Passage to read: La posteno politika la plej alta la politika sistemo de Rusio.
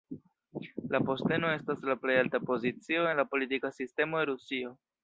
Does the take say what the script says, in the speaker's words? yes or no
no